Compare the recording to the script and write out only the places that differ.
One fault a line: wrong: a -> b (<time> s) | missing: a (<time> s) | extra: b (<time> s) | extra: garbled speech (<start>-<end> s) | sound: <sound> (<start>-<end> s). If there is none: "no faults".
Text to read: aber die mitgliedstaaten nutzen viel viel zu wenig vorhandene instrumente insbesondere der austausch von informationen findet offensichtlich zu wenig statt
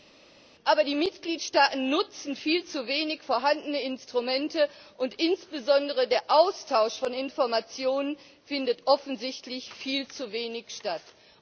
missing: viel (2.6 s)
extra: und (5.0 s)
extra: viel (9.7 s)